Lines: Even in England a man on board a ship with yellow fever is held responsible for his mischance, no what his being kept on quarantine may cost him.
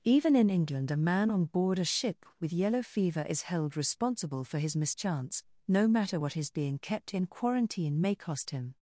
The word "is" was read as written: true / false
true